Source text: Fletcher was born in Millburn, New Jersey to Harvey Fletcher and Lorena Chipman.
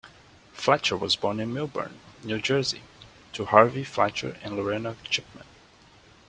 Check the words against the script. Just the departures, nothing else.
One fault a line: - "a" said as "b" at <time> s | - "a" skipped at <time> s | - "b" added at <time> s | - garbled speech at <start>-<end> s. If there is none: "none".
none